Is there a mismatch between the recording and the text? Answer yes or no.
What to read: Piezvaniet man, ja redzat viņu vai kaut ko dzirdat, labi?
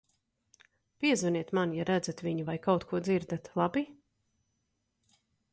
no